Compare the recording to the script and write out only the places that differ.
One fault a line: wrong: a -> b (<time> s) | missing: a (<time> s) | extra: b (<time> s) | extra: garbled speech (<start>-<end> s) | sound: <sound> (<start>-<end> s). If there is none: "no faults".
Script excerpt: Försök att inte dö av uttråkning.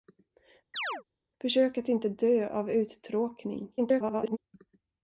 sound: chirp (0.7-1.0 s)
extra: garbled speech (3.8-4.4 s)